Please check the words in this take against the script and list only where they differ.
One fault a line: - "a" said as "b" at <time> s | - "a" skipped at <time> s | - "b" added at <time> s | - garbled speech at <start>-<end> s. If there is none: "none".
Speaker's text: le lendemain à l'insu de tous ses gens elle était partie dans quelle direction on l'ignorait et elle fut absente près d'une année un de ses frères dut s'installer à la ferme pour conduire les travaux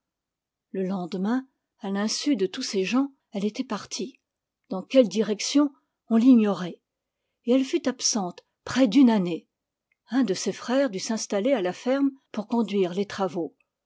none